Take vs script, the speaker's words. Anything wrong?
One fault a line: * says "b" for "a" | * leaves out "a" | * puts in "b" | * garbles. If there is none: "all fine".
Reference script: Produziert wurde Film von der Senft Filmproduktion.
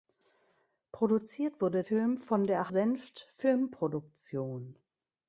all fine